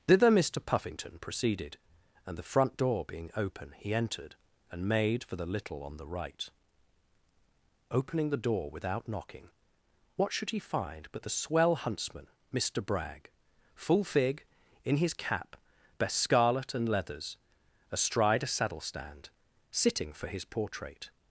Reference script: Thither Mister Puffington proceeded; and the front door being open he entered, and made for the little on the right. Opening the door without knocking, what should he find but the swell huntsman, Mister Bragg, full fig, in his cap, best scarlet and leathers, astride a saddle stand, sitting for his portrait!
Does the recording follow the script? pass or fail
pass